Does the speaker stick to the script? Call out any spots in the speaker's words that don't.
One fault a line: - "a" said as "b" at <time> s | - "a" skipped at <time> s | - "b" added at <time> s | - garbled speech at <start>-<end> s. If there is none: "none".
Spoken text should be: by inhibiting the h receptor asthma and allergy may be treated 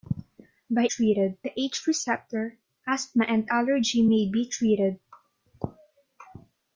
- "inhibiting" said as "treated" at 0.9 s